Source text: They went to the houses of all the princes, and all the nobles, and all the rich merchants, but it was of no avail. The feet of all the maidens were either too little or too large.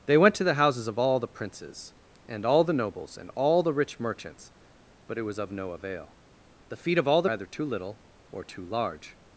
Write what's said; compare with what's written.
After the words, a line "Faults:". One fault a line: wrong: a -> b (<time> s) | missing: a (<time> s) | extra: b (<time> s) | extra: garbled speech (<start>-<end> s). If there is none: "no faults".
They went to the houses of all the princes, and all the nobles, and all the rich merchants, but it was of no avail. The feet of all the either too little or too large.
Faults:
missing: maidens were (7.3 s)